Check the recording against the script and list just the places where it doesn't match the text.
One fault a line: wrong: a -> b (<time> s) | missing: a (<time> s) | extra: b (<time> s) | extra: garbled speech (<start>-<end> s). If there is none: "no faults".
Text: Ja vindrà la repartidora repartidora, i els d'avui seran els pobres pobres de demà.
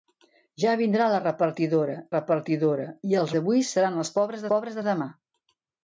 no faults